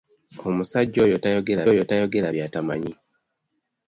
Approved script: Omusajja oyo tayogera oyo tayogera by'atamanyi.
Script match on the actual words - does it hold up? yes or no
yes